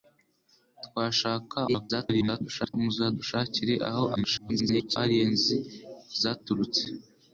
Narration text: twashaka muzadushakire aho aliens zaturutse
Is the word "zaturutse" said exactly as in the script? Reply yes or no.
yes